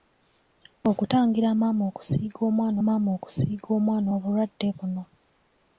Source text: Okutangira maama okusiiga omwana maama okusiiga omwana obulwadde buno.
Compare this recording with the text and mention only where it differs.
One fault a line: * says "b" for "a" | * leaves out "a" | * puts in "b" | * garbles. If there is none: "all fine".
all fine